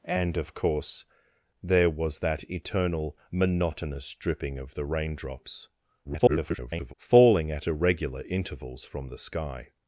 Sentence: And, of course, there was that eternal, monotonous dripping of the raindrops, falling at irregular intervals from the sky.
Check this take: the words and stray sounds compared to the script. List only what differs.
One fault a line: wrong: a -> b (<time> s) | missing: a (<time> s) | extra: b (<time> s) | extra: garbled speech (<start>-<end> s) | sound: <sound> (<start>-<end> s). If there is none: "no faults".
extra: garbled speech (6.0-6.9 s)